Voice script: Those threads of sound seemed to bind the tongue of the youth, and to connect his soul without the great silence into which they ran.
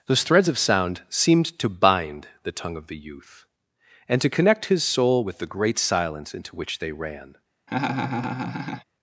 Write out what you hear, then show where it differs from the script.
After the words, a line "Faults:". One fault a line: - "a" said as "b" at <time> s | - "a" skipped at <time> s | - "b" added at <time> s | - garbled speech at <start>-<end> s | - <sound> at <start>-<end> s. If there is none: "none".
Those threads of sound seemed to bind the tongue of the youth, and to connect his soul with the great silence into which they ran.
Faults:
- "without" said as "with" at 5.2 s
- laugh at 7.7-8.8 s